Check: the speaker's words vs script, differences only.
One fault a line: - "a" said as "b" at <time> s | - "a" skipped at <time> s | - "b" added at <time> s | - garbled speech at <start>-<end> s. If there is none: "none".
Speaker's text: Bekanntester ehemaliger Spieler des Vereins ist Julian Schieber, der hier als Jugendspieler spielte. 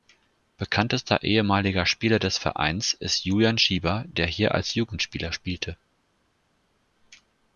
none